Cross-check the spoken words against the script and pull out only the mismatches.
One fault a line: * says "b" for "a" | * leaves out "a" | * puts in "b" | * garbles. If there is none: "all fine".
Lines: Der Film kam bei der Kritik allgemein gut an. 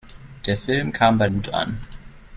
* leaves out "der Kritik allgemein"